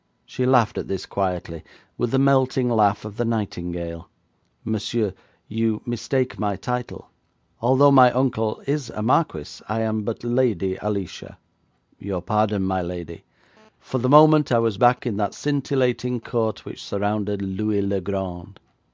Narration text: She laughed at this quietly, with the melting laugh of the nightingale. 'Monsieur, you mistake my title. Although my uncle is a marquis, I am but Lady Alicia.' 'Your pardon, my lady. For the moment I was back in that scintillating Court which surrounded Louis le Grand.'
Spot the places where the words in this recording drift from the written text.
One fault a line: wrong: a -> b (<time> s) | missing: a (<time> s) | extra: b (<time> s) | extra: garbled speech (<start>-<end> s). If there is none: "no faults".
no faults